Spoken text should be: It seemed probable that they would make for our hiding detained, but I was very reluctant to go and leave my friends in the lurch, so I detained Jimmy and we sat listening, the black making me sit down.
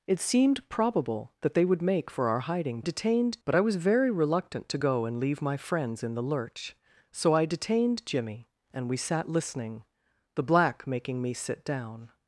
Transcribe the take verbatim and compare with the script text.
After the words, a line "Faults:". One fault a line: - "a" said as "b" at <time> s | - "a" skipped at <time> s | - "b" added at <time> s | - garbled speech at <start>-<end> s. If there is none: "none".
It seemed probable that they would make for our hiding detained, but I was very reluctant to go and leave my friends in the lurch, so I detained Jimmy and we sat listening, the black making me sit down.
Faults:
none